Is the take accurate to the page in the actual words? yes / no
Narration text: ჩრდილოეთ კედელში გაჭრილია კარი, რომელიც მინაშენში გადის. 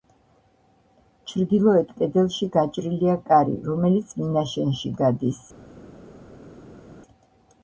yes